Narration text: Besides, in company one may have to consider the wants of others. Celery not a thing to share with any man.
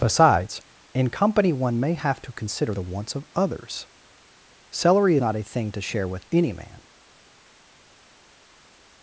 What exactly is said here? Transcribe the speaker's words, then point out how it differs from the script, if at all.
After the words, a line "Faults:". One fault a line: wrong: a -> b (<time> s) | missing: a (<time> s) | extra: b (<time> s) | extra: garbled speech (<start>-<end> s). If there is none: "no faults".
Besides, in company one may have to consider the wants of others. Celery not a thing to share with any man.
Faults:
no faults